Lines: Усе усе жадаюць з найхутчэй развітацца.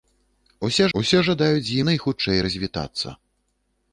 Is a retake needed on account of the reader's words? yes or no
no